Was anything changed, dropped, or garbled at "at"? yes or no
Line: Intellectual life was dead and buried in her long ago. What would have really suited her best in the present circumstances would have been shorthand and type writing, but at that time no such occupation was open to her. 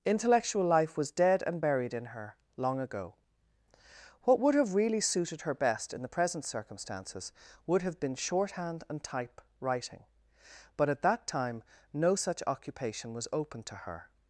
no